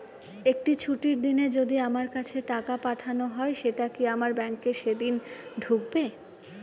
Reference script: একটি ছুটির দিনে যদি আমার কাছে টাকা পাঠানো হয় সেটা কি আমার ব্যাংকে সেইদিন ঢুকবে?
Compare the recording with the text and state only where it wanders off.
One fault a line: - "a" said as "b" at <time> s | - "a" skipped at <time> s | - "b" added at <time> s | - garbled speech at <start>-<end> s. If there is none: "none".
none